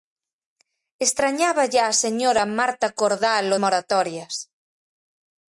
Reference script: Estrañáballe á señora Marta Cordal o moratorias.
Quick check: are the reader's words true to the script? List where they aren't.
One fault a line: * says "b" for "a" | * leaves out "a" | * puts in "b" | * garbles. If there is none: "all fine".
all fine